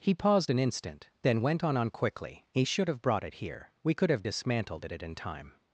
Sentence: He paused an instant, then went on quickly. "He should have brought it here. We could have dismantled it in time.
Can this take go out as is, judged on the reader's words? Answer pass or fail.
fail